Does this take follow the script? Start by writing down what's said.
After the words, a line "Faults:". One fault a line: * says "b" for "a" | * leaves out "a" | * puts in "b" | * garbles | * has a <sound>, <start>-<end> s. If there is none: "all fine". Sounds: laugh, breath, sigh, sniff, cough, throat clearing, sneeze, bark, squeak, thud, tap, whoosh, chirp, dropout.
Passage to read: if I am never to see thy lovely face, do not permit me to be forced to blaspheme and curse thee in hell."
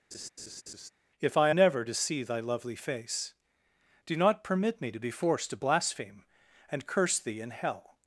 if I never to see thy lovely face, do not permit me to be forced to blaspheme and curse thee in hell."
Faults:
* has a laugh, 0.1-0.9 s
* leaves out "am"